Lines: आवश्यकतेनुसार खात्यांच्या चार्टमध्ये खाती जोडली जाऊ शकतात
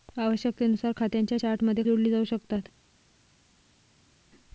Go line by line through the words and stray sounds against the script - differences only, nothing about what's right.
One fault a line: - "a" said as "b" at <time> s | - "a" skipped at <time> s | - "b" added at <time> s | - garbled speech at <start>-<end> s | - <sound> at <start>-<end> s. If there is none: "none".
- "खाती" skipped at 1.8 s